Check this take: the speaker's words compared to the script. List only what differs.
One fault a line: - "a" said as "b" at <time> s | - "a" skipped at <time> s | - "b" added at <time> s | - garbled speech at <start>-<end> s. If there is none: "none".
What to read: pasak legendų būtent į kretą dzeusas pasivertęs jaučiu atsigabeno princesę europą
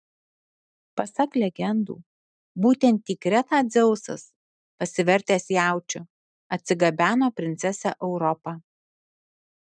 none